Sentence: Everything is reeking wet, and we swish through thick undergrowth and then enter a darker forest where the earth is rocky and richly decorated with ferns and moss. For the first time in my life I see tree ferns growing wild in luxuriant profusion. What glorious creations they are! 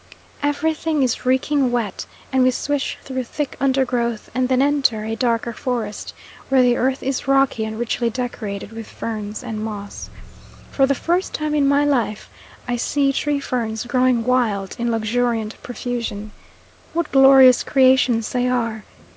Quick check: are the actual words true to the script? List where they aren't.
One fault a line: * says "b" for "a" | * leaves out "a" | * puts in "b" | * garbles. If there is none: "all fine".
all fine